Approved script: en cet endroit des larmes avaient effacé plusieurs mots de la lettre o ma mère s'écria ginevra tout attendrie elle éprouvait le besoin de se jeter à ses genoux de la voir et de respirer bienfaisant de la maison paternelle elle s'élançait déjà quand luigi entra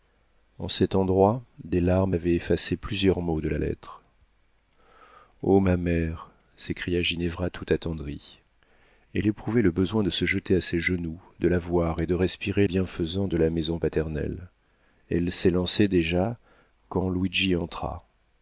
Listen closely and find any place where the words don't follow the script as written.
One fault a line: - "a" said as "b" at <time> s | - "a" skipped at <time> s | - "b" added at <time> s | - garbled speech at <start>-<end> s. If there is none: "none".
none